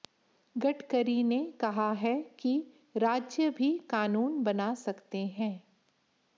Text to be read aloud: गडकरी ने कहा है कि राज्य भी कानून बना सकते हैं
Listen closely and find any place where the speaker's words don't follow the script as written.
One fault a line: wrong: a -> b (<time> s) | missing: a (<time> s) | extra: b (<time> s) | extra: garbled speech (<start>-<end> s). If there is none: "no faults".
no faults